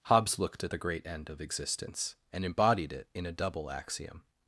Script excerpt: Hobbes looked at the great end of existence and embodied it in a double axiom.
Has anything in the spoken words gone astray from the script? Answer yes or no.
no